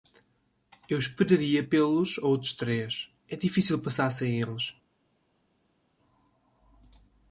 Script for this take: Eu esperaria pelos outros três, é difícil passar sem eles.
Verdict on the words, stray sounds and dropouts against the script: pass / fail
pass